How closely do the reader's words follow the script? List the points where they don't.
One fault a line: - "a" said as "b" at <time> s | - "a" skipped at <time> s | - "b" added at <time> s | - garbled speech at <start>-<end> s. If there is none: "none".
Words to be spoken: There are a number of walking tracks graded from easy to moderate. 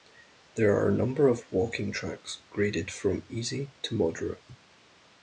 none